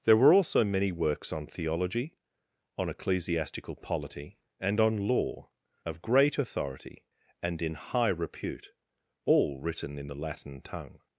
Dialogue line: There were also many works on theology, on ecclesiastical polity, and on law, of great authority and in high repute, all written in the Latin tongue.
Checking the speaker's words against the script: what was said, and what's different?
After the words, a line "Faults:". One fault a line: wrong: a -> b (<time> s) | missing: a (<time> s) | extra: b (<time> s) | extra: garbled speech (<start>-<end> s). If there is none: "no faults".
There were also many works on theology, on ecclesiastical polity, and on law, of great authority and in high repute, all written in the Latin tongue.
Faults:
no faults